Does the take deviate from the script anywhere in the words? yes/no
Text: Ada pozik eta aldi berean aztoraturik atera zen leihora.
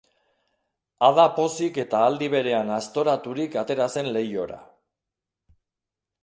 no